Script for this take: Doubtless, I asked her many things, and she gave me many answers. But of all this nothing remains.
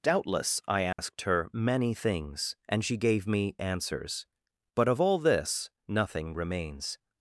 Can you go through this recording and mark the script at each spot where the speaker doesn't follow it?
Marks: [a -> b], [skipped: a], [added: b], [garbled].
Doubtless, I asked her many things, and she gave me [skipped: many] answers. But of all this nothing remains.